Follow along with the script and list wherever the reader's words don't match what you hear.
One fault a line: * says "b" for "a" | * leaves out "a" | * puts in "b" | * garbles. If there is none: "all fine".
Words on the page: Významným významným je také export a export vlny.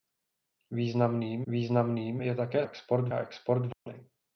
all fine